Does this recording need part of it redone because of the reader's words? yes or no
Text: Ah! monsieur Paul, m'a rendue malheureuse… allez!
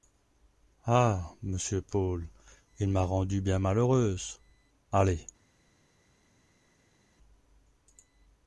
yes